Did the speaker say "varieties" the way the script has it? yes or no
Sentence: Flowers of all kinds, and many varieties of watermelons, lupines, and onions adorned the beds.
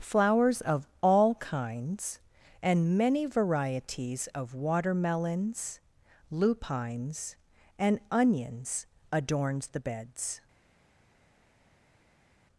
yes